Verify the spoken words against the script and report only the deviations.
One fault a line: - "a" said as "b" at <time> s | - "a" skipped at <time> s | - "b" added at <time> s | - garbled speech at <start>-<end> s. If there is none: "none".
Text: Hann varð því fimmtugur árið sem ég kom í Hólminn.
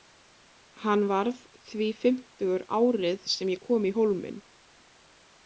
none